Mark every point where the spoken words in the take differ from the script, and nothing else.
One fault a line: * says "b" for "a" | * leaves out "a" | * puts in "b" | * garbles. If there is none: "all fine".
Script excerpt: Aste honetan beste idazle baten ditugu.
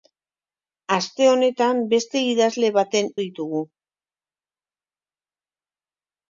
all fine